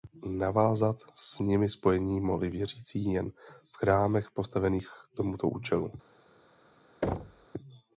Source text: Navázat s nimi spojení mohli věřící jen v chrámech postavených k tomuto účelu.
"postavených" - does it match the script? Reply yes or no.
yes